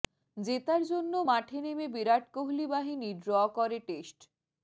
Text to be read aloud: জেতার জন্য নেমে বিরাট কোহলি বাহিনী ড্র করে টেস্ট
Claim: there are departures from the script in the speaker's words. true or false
true